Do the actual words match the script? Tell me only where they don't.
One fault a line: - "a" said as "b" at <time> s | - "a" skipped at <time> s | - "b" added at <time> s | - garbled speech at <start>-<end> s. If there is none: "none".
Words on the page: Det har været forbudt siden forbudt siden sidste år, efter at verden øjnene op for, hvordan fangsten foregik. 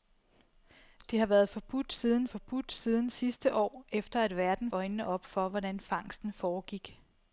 none